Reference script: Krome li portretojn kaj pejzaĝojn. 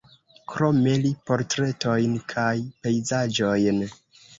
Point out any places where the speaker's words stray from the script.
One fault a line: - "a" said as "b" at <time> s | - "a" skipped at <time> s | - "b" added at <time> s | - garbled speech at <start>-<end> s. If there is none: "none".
none